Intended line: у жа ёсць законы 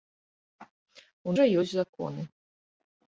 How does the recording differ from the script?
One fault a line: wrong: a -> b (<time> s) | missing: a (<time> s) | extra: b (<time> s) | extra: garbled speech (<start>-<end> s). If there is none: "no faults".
no faults